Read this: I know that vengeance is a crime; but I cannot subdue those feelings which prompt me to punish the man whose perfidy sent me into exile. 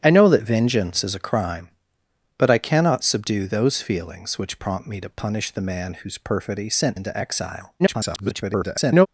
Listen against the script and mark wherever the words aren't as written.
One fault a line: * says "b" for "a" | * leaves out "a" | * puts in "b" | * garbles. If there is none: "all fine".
* leaves out "me"
* garbles